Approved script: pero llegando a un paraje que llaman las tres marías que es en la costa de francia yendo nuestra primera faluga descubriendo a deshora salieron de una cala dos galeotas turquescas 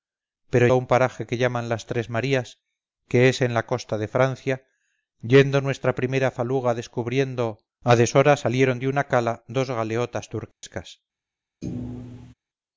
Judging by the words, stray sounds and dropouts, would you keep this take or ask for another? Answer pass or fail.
fail